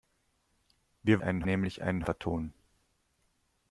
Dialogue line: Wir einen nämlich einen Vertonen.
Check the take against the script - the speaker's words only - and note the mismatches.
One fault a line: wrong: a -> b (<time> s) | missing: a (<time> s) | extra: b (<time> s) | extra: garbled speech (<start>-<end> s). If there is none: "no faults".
no faults